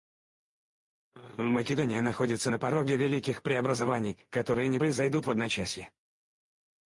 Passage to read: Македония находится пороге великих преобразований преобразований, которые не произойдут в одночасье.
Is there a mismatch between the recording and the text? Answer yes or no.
yes